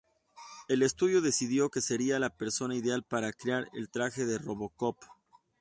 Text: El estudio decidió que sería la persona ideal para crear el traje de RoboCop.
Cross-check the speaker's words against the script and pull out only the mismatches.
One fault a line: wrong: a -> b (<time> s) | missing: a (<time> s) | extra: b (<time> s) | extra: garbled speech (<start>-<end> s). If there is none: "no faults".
no faults